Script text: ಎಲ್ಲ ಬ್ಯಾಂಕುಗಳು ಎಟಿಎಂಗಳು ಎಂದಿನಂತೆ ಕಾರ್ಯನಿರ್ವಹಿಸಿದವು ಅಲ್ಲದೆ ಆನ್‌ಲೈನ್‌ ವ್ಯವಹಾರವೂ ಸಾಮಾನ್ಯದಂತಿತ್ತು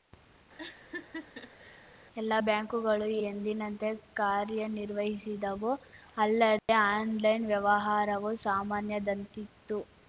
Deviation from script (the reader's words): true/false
true